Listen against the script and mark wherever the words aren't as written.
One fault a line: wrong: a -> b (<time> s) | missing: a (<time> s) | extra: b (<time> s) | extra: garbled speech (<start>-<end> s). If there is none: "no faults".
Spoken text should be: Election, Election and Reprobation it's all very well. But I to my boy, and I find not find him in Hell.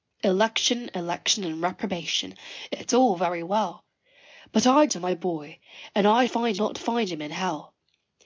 no faults